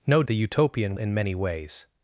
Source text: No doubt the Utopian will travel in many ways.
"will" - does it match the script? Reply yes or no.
no